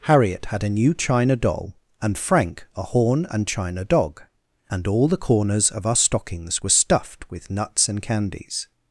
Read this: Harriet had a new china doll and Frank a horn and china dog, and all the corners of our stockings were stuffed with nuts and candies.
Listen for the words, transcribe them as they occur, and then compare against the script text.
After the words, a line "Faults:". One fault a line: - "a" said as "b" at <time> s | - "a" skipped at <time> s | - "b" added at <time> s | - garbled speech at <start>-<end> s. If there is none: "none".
Harriet had a new china doll and Frank a horn and china dog, and all the corners of our stockings were stuffed with nuts and candies.
Faults:
none